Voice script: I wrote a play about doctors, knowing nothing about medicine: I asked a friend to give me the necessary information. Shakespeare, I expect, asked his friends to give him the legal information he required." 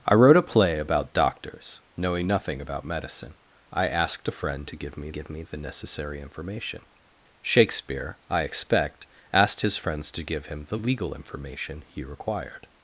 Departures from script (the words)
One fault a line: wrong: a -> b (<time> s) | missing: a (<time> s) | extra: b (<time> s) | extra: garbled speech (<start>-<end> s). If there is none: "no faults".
extra: give me (5.1 s)